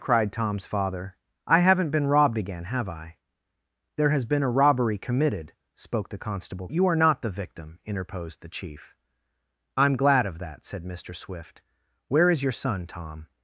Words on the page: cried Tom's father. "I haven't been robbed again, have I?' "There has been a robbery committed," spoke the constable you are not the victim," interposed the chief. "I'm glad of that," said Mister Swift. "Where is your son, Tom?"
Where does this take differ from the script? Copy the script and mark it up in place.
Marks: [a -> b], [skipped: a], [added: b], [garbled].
cried Tom's father. "I haven't been robbed again, have I?' "There has been a robbery committed," spoke the constable you are not the victim," interposed the chief. "I'm glad of that," said Mister Swift. "Where is your son, Tom?"